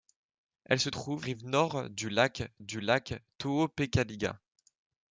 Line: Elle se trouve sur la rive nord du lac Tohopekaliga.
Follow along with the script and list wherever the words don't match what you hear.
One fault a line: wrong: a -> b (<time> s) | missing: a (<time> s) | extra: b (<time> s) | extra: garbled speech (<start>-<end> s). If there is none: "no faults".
wrong: sur la rive nord -> rive nord du lac (1.2 s)